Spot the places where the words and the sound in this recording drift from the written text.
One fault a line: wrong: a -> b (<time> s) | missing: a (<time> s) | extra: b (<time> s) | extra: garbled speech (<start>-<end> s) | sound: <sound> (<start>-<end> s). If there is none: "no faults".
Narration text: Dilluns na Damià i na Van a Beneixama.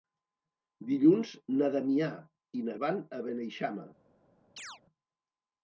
sound: chirp (4.6-4.8 s)